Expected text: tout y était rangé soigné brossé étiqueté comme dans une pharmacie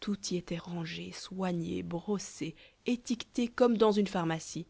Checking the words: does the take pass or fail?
pass